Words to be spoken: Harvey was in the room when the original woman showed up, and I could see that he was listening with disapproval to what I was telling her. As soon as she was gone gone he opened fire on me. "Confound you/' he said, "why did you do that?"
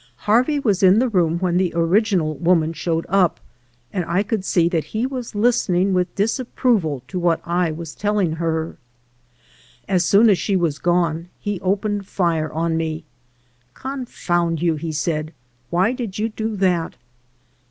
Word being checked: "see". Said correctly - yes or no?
yes